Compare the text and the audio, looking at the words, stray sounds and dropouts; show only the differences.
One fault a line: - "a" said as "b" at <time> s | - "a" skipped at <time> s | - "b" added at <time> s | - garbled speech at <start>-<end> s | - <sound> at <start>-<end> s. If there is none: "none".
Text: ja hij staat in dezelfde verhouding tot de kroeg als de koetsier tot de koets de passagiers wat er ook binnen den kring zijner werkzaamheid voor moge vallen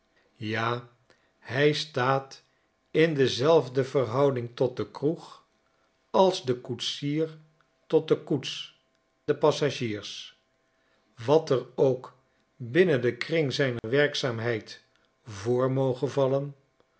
- dropout at 13.8-13.8 s